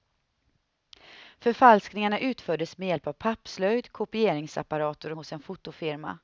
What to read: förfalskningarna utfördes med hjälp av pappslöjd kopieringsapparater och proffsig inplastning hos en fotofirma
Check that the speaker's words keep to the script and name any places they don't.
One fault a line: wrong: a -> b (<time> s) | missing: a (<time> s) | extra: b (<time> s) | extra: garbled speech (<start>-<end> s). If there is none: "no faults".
missing: och proffsig inplastning (5.1 s)